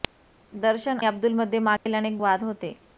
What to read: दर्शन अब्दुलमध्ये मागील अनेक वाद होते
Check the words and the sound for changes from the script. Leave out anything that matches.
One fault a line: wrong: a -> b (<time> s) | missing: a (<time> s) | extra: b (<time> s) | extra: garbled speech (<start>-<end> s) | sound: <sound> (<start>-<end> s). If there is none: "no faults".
sound: dropout (1.8-1.9 s)